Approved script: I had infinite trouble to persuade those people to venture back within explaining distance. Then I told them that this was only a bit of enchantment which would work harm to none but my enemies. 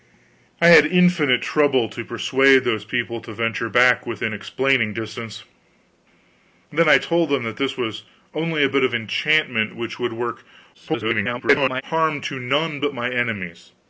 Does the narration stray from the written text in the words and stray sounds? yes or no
yes